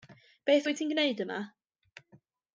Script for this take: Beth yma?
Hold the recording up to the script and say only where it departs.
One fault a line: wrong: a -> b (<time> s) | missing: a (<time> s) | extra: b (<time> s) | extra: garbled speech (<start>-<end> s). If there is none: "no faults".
extra: wyt ti'n gwneud (0.7 s)